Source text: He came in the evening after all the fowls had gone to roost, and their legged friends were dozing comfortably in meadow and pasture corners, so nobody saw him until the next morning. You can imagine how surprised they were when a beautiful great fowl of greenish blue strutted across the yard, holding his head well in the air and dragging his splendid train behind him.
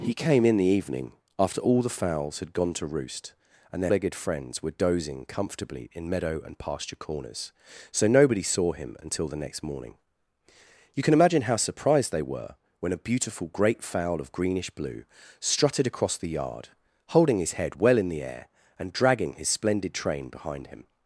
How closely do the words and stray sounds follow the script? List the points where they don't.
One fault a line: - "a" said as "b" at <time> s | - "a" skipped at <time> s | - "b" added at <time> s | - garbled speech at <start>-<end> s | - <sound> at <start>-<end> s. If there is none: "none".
none